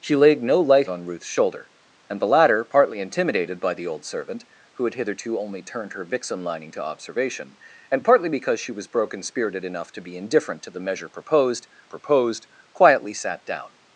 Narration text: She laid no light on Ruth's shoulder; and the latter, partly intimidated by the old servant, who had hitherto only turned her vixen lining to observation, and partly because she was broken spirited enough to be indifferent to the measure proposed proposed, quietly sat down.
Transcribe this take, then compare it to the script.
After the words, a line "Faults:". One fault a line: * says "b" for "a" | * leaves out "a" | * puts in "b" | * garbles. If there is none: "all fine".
She laid no light on Ruth's shoulder; and the latter, partly intimidated by the old servant, who had hitherto only turned her vixen lining to observation, and partly because she was broken spirited enough to be indifferent to the measure proposed proposed, quietly sat down.
Faults:
all fine